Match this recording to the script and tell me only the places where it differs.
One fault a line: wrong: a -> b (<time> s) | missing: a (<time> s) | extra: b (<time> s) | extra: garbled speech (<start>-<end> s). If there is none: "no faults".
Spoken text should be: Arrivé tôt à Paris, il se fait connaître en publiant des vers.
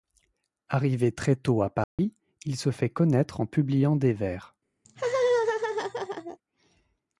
extra: très (1.1 s)